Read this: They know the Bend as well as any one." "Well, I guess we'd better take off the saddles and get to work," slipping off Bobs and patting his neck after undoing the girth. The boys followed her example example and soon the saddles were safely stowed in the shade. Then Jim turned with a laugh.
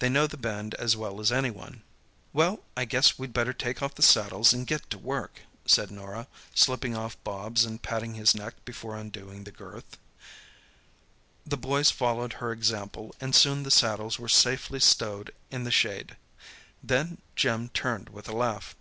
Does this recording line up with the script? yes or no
no